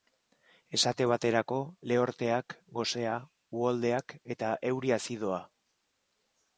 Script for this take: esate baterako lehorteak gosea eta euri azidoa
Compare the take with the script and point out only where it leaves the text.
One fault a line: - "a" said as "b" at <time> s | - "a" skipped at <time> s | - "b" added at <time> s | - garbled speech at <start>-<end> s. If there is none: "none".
- "uholdeak" added at 3.6 s